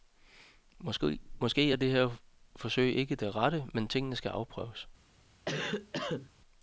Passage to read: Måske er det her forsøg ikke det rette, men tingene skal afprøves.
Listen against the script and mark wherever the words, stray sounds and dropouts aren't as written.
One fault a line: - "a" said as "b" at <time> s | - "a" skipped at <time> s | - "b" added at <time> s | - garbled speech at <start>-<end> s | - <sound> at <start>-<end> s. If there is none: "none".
- cough at 5.5-6.3 s